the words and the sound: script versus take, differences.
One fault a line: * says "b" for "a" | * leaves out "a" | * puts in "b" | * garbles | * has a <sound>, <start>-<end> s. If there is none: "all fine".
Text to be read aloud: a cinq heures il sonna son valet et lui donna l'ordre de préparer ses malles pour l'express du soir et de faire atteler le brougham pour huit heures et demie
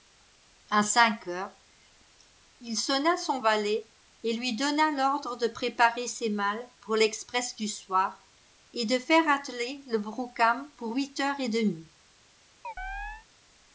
* has a chirp, 12.6-13.3 s